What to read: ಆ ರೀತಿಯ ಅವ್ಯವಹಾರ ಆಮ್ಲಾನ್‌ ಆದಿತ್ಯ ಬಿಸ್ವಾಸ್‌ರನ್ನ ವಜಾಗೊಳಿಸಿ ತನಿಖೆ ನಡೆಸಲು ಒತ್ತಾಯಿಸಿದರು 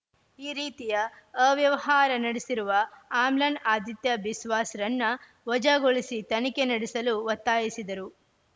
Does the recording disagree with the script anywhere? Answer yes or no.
yes